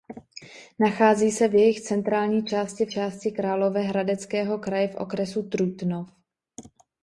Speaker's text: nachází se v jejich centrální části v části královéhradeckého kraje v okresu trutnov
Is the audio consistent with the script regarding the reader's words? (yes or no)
yes